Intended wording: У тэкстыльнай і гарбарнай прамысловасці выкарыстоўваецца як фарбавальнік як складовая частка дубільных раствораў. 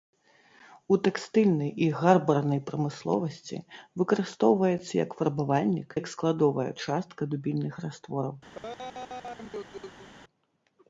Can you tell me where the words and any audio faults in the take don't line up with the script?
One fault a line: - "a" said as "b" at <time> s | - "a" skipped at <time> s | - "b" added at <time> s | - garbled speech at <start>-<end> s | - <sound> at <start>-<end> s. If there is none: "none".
- laugh at 8.5-10.1 s